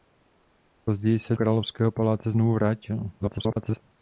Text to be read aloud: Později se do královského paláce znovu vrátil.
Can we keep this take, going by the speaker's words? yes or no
no